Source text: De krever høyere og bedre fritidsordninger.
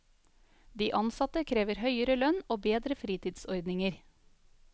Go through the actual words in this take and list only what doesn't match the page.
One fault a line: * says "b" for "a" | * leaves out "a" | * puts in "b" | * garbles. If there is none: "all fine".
* puts in "ansatte"
* puts in "lønn"